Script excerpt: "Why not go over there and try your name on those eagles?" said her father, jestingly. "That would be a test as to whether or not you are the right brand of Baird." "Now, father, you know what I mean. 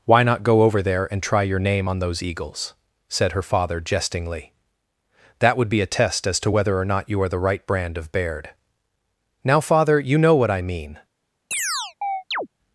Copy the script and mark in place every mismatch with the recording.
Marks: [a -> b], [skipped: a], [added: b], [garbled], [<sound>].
"Why not go over there and try your name on those eagles?" said her father, jestingly. "That would be a test as to whether or not you are the right brand of Baird." "Now, father, you know what I mean. [chirp]